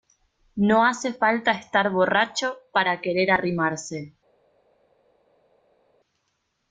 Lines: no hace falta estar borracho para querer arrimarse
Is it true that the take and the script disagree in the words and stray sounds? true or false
false